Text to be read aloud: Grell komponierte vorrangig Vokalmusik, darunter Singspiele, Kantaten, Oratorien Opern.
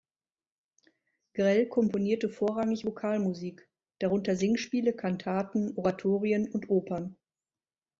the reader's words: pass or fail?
fail